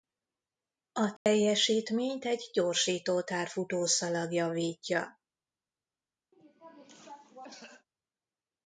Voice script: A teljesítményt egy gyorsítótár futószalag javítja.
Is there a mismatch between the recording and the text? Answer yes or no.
no